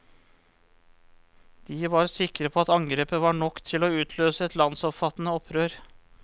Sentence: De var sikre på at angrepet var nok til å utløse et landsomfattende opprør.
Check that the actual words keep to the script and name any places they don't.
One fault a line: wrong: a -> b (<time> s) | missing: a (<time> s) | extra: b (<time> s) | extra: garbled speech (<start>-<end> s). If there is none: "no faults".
no faults